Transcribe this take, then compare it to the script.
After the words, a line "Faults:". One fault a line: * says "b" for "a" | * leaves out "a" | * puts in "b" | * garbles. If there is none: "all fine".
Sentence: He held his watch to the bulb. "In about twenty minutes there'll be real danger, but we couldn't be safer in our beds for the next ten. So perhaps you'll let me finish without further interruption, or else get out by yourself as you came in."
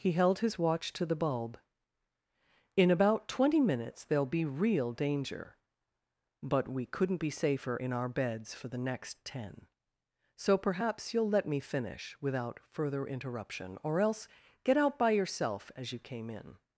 He held his watch to the bulb. "In about twenty minutes there'll be real danger, but we couldn't be safer in our beds for the next ten. So perhaps you'll let me finish without further interruption, or else get out by yourself as you came in."
Faults:
all fine